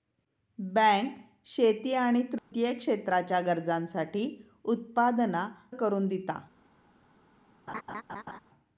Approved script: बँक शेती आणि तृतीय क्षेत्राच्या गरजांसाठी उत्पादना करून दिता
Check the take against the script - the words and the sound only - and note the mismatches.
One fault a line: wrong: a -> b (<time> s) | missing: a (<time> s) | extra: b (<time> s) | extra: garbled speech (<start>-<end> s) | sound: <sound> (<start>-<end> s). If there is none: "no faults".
sound: dropout (2.4-2.5 s)
sound: laugh (7.7-8.4 s)